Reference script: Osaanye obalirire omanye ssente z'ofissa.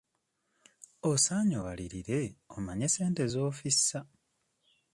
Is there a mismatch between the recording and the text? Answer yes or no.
no